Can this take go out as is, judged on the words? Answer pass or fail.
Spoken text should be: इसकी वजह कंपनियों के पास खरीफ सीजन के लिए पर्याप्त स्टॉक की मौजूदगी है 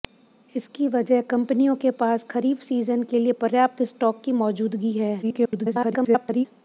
fail